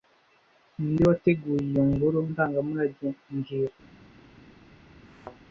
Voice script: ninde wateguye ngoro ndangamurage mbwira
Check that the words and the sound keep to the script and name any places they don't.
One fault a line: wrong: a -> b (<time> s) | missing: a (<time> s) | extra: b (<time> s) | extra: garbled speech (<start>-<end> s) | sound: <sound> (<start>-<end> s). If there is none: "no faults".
extra: iyo (1.7 s)
sound: thud (5.1-5.4 s)